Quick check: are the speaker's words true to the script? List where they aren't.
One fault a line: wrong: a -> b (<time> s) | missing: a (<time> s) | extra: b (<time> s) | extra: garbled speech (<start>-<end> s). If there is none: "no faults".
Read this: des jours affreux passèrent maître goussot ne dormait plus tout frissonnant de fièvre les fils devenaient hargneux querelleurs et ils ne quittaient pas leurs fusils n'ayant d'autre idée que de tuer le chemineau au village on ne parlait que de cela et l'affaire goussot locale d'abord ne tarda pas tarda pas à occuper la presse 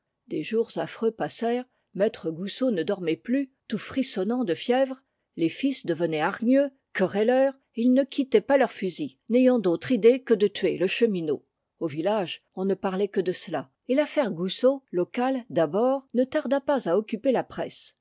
missing: tarda pas (16.9 s)